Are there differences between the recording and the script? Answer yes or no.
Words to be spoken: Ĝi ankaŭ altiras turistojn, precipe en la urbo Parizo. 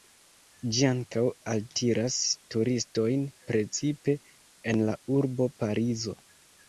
no